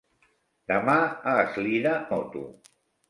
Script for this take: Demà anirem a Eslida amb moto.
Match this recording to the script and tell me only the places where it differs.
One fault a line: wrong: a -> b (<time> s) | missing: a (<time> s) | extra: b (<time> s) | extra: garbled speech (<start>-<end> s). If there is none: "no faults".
missing: anirem (0.9 s)
missing: amb (1.9 s)